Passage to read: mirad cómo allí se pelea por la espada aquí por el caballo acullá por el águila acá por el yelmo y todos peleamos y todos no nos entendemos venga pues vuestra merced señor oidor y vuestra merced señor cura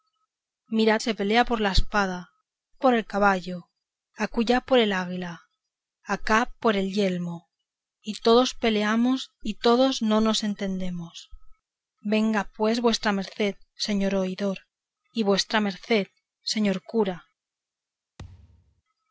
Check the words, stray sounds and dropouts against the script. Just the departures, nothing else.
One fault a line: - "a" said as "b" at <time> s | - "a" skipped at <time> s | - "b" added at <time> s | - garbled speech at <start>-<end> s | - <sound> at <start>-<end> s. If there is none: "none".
- "cómo allí" skipped at 1.0 s
- "aquí" skipped at 2.3 s
- thud at 18.2-18.8 s